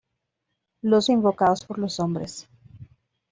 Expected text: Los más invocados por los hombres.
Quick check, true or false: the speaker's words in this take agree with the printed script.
false